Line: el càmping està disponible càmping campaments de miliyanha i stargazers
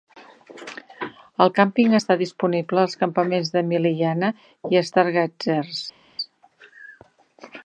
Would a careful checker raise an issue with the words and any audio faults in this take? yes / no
yes